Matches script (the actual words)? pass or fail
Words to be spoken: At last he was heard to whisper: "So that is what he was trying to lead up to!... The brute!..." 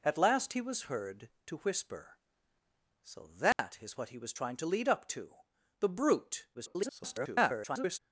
fail